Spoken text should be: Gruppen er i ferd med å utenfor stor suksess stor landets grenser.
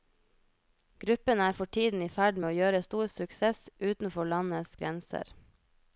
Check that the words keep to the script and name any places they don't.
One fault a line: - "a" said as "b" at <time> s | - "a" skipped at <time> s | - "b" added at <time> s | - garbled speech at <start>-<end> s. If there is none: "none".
- "for tiden" added at 1.5 s
- "utenfor" said as "gjøre" at 2.6 s
- "stor" said as "utenfor" at 3.9 s